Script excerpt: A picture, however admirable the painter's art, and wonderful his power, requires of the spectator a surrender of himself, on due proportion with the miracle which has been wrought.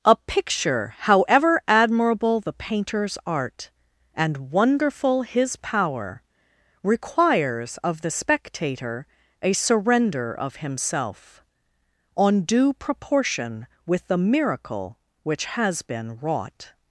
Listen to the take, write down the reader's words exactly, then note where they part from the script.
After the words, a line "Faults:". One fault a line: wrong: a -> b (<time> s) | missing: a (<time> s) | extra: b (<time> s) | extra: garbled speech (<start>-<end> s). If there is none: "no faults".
A picture, however admirable the painter's art, and wonderful his power, requires of the spectator a surrender of himself, on due proportion with the miracle which has been wrought.
Faults:
no faults